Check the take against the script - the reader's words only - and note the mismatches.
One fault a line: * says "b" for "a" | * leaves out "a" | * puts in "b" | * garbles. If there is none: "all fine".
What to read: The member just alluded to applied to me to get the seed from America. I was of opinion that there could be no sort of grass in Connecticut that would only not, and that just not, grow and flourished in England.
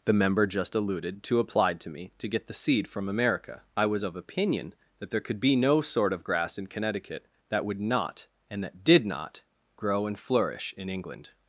* leaves out "only"
* says "did" for "just"
* says "flourish" for "flourished"